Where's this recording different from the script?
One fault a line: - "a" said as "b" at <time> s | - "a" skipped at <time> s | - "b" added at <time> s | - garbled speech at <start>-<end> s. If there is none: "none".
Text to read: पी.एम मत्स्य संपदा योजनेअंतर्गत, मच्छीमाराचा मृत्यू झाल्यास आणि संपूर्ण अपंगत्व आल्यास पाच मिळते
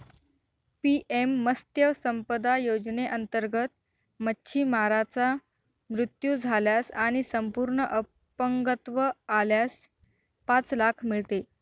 - "लाख" added at 10.8 s